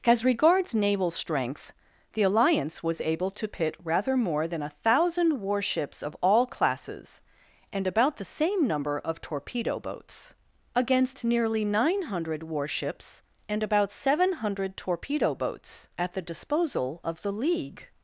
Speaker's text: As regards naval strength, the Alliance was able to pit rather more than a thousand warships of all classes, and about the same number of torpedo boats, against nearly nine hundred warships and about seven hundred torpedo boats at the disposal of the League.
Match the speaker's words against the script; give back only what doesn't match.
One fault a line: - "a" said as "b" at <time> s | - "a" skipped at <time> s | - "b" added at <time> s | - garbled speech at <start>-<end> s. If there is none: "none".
none